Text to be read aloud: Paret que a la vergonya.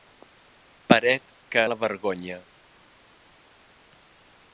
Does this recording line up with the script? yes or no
yes